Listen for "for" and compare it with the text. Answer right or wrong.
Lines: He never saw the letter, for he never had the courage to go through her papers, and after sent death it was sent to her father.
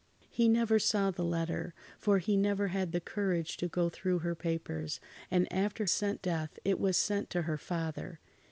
right